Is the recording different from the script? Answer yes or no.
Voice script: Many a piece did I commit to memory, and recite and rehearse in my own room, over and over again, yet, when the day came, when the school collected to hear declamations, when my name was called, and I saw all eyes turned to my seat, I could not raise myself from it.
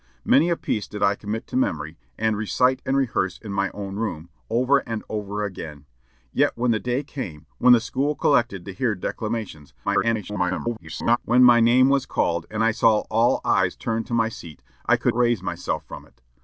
yes